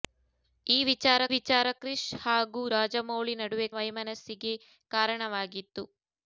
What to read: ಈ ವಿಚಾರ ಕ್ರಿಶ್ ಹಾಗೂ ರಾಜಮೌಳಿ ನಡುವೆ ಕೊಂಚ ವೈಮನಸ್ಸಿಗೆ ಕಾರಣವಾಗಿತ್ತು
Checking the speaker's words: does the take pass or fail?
fail